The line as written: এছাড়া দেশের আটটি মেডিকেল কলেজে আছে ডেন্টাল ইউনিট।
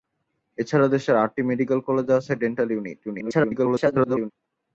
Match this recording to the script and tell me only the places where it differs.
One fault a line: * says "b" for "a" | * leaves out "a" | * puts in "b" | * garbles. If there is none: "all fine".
* garbles